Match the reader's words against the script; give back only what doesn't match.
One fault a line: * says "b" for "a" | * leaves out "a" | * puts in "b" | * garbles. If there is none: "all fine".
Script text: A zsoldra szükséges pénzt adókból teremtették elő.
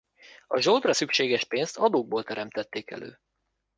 all fine